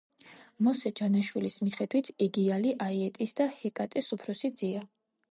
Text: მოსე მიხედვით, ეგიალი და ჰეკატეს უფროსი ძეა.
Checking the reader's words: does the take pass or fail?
fail